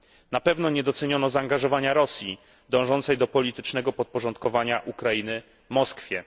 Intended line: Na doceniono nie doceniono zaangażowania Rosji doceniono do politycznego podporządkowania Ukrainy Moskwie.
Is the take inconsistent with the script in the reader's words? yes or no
yes